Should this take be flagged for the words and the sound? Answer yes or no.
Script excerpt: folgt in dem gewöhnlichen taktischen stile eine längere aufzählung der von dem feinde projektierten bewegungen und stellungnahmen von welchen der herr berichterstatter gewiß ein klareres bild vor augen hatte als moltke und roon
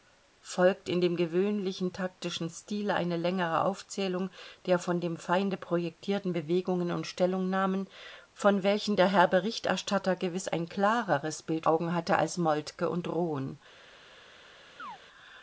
yes